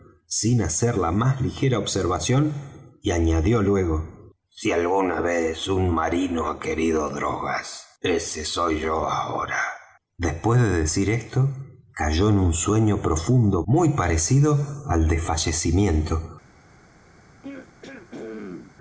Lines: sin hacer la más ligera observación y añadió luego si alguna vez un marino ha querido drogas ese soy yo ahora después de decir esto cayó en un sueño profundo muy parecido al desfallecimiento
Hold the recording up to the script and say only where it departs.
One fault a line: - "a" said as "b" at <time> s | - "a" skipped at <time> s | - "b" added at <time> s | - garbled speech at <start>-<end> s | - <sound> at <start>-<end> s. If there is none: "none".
- throat clearing at 17.4-18.8 s